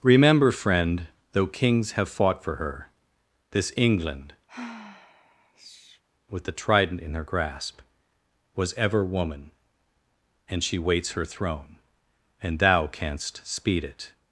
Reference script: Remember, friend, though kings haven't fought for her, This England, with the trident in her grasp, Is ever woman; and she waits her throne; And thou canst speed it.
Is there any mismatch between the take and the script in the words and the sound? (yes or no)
yes